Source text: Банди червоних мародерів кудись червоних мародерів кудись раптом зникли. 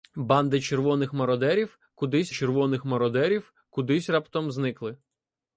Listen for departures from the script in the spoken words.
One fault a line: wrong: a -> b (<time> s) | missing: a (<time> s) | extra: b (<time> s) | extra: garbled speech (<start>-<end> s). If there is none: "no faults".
no faults